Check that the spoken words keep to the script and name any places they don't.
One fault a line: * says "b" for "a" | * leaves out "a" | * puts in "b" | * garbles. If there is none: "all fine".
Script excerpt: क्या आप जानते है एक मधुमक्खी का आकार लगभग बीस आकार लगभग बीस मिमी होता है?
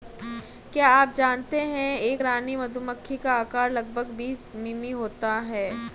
* puts in "रानी"
* leaves out "आकार लगभग बीस"